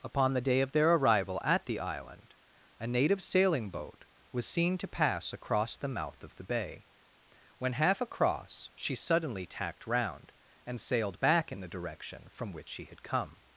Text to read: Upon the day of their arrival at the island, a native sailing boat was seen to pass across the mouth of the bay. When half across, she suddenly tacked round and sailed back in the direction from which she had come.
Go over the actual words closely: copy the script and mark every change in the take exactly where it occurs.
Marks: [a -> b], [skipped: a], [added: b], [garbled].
Upon the day of their arrival at the island, a native sailing boat was seen to pass across the mouth of the bay. When half across, she suddenly tacked round and sailed back in the direction from which she had come.